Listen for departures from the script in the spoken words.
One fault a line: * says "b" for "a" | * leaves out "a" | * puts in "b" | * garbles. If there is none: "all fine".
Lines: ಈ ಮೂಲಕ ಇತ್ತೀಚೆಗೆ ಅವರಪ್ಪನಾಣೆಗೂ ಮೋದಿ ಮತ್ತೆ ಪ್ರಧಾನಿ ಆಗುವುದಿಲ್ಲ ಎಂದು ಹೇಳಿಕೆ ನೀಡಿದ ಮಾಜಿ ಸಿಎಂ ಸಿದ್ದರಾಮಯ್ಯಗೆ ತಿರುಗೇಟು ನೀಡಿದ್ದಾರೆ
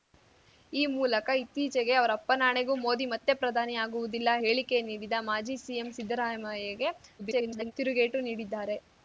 * leaves out "ಎಂದು"
* garbles